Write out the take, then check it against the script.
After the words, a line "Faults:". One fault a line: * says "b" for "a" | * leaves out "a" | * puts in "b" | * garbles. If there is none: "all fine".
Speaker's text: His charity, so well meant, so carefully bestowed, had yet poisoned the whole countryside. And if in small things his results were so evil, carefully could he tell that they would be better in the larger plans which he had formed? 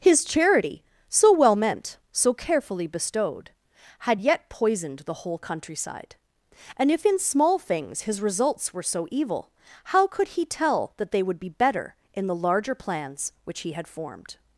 His charity, so well meant, so carefully bestowed, had yet poisoned the whole countryside. And if in small things his results were so evil, how could he tell that they would be better in the larger plans which he had formed?
Faults:
* says "how" for "carefully"